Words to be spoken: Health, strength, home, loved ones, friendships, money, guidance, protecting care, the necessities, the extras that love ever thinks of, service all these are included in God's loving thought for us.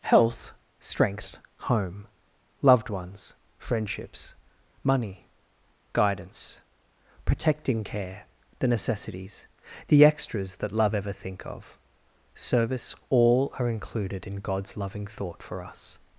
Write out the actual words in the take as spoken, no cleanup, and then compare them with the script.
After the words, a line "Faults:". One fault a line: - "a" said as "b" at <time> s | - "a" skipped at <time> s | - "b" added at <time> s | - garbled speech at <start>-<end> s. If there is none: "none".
Health, strength, home, loved ones, friendships, money, guidance, protecting care, the necessities, the extras that love ever think of, service all are included in God's loving thought for us.
Faults:
- "thinks" said as "think" at 11.1 s
- "these" skipped at 13.5 s